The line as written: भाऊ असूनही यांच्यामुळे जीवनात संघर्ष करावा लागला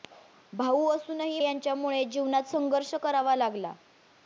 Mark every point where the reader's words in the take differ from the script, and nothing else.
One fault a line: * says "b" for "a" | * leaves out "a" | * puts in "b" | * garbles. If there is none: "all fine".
all fine